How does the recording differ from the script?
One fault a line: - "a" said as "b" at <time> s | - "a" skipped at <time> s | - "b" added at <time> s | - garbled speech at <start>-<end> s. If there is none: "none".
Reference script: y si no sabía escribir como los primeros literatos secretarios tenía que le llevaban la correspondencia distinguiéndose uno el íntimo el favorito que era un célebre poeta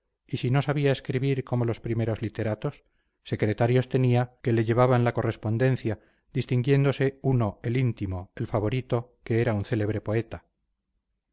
none